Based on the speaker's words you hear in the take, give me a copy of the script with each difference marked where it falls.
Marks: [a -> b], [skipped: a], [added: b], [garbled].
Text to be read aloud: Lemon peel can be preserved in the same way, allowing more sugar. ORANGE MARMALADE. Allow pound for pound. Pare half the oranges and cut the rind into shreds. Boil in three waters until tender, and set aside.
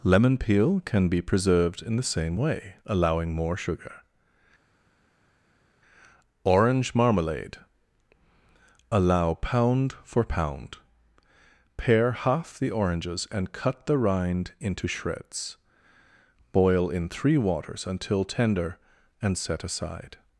Lemon peel can be preserved in the same way, allowing more sugar. ORANGE MARMALADE. Allow pound for pound. Pare half the oranges and cut the rind into shreds. Boil in three waters until tender, and set aside.